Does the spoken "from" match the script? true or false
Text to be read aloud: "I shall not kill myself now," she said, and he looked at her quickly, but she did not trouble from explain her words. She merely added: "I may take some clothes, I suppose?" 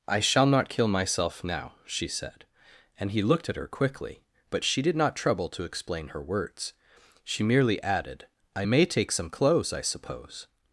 false